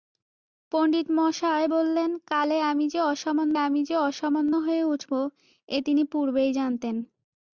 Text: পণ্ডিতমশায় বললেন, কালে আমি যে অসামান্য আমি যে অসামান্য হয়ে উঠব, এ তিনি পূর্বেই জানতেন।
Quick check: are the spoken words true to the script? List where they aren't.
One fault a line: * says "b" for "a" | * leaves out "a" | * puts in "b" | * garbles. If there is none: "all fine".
all fine